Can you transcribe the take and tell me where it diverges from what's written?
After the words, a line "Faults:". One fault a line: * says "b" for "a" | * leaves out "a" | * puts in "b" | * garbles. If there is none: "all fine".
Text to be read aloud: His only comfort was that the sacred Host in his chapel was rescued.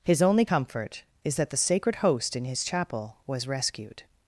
His only comfort is that the sacred Host in his chapel was rescued.
Faults:
* says "is" for "was"